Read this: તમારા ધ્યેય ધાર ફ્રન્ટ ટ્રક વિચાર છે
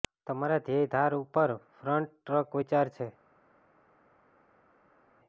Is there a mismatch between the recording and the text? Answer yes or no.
yes